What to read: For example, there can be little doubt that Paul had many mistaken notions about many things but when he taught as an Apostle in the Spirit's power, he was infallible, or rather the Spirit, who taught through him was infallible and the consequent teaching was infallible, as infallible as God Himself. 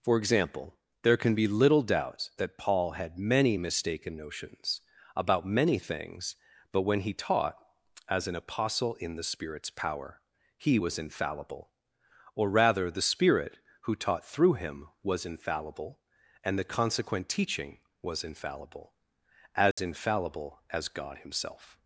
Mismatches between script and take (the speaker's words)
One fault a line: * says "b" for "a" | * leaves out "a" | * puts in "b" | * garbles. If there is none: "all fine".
all fine